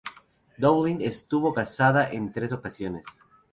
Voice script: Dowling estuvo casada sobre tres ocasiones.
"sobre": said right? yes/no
no